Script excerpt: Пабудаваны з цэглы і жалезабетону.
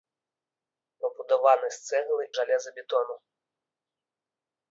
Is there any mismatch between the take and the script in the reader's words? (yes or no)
yes